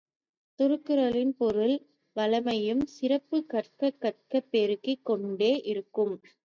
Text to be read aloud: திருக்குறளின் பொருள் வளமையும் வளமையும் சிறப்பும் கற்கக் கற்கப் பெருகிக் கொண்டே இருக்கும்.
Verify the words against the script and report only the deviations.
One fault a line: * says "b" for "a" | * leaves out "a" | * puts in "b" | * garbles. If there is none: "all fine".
* leaves out "வளமையும்"